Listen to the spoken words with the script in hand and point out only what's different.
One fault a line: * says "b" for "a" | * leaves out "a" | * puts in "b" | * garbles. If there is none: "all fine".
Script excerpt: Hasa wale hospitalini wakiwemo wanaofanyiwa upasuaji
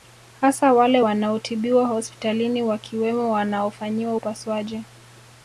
* puts in "wanaotibiwa"